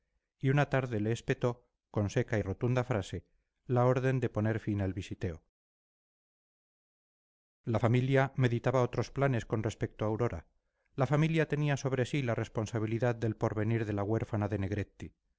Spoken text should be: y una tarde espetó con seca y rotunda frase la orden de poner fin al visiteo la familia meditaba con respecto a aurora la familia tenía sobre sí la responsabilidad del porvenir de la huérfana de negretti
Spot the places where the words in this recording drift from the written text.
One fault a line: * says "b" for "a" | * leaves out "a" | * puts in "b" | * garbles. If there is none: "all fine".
* puts in "le"
* puts in "otros planes"